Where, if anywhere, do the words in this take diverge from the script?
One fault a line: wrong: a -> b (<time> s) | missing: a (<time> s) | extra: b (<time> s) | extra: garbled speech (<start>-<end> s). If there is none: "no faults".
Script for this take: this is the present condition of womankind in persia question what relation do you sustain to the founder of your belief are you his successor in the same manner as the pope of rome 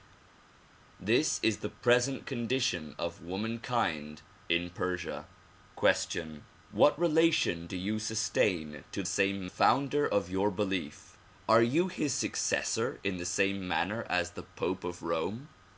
wrong: the -> same (9.1 s)